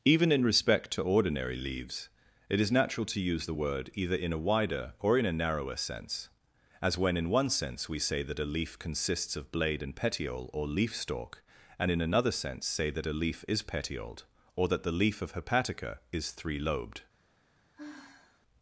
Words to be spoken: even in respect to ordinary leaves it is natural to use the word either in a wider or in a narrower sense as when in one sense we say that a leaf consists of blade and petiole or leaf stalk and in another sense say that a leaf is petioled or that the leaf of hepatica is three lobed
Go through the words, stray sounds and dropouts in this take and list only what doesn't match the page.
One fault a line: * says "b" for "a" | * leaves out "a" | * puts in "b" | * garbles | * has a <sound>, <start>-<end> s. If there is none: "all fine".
* has a sigh, 17.7-18.4 s